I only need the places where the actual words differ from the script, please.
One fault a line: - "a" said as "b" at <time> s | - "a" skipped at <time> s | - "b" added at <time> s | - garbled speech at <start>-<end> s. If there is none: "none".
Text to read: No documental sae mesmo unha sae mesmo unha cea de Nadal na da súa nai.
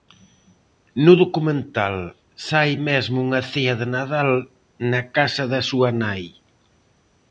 - "sae mesmo unha" skipped at 3.4 s
- "casa" added at 5.2 s